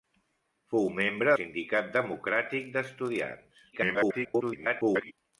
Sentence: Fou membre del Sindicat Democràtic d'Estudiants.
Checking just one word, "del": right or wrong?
wrong